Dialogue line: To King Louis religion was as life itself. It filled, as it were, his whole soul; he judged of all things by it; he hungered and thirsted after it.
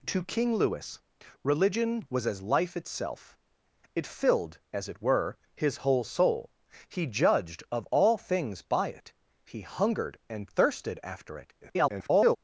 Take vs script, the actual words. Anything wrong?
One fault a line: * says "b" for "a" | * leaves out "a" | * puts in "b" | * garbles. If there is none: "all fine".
* garbles